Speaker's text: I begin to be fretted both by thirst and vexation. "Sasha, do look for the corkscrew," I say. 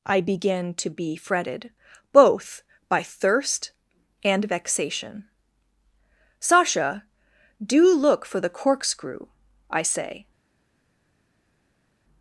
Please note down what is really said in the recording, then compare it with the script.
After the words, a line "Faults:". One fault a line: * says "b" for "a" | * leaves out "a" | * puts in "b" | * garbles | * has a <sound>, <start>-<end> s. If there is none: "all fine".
I begin to be fretted both by thirst and vexation. "Sasha, do look for the corkscrew," I say.
Faults:
all fine